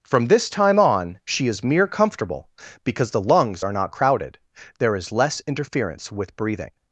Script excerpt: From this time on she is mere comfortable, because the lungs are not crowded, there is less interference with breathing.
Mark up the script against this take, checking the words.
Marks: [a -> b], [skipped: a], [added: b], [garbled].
From this time on she is mere comfortable, because the lungs are not crowded, there is less interference with breathing.